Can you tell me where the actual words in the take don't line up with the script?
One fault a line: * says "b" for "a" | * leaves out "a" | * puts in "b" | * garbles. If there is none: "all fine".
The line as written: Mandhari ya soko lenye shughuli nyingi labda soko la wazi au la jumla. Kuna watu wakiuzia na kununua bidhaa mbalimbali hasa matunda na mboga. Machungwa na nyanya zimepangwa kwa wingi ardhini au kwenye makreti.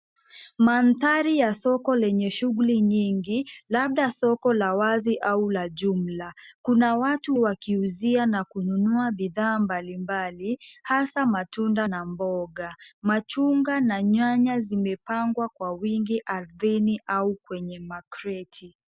all fine